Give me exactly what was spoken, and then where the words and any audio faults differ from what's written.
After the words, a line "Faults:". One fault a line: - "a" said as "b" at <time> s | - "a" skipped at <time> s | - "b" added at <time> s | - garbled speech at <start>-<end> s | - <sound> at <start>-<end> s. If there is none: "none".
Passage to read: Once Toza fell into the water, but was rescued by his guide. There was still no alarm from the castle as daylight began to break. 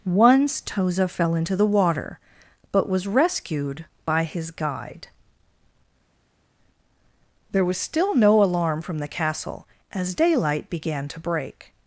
Once Toza fell into the water, but was rescued by his guide. There was still no alarm from the castle as daylight began to break.
Faults:
none